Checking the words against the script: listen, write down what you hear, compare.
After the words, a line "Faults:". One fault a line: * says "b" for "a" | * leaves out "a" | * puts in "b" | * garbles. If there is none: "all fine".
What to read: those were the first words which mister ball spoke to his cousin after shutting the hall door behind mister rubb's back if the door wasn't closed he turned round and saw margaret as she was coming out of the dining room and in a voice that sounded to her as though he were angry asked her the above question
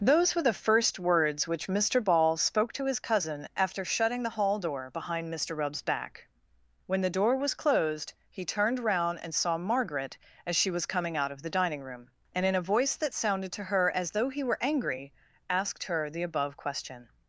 those were the first words which mister ball spoke to his cousin after shutting the hall door behind mister rubb's back when the door was closed he turned round and saw margaret as she was coming out of the dining room and in a voice that sounded to her as though he were angry asked her the above question
Faults:
* says "when" for "if"
* says "was" for "wasn't"